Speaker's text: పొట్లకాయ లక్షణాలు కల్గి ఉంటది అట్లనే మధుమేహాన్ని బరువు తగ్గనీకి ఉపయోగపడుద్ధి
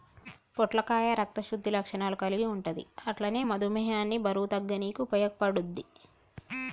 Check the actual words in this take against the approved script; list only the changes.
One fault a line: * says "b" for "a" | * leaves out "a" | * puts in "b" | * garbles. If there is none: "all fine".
* puts in "రక్త శుద్ధి"